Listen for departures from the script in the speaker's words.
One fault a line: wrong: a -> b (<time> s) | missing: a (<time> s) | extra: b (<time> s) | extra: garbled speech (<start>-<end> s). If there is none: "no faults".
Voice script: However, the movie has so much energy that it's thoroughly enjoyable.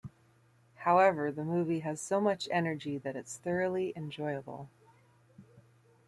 no faults